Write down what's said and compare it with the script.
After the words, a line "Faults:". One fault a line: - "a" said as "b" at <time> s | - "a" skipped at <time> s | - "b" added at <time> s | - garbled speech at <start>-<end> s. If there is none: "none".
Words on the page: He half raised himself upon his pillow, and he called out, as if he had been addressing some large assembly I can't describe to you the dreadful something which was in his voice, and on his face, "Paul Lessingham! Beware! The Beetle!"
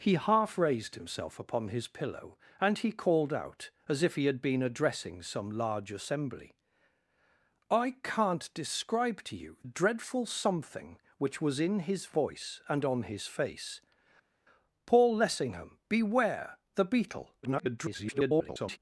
He half raised himself upon his pillow, and he called out, as if he had been addressing some large assembly I can't describe to you dreadful something which was in his voice, and on his face, "Paul Lessingham! Beware! The Beetle!" [garbled]
Faults:
- "the" skipped at 9.6 s
- garbled speech at 17.4-18.8 s